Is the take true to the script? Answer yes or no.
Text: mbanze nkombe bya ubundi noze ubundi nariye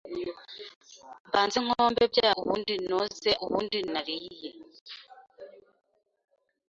yes